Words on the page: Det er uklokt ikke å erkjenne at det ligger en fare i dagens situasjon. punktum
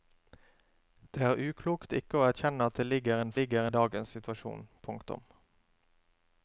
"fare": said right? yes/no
no